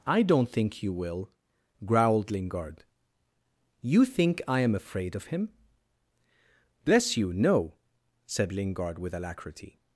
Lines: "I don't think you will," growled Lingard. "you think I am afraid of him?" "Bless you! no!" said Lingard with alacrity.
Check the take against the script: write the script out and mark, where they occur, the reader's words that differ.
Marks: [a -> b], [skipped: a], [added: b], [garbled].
"I don't think you will," growled Lingard. "you think I am afraid of him?" "Bless you! no!" said Lingard with alacrity.